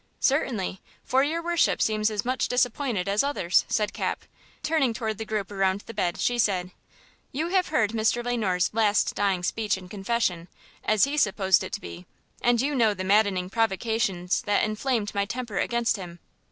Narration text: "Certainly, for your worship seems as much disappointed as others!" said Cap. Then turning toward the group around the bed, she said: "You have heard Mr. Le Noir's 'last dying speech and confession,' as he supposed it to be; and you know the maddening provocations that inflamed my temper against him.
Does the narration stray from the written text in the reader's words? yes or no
yes